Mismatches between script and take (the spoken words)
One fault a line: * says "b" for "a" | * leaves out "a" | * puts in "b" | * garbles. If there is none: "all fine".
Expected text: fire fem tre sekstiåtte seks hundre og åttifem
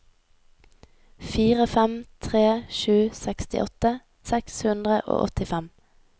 * puts in "sju"